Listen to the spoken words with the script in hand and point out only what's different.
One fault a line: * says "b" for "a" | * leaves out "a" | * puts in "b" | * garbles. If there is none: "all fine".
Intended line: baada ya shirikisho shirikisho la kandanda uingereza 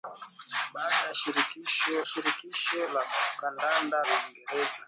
all fine